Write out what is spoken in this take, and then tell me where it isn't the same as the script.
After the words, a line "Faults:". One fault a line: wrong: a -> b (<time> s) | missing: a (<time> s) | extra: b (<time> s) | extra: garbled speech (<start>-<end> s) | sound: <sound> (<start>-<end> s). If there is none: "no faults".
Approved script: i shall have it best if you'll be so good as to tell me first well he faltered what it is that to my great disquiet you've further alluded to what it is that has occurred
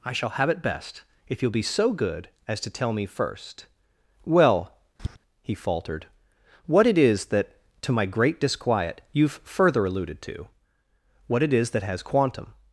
i shall have it best if you'll be so good as to tell me first well he faltered what it is that to my great disquiet you've further alluded to what it is that has quantum
Faults:
sound: tap (5.0-5.2 s)
wrong: occurred -> quantum (12.0 s)